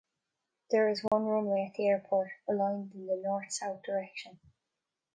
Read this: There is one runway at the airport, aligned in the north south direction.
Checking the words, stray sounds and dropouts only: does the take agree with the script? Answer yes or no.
no